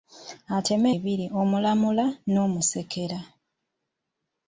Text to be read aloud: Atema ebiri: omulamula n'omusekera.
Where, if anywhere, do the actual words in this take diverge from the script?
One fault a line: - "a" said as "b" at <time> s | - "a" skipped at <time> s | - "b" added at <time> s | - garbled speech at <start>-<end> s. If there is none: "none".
none